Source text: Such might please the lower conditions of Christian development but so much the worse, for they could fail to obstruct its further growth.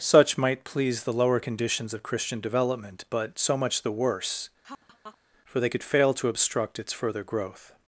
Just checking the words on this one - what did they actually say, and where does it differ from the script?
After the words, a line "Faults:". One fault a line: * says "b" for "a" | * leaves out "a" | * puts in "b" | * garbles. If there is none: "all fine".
Such might please the lower conditions of Christian development but so much the worse, for they could fail to obstruct its further growth.
Faults:
all fine